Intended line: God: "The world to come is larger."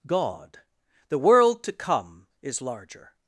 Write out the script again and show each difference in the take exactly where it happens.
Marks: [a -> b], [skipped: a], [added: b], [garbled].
God: "The world to come is larger."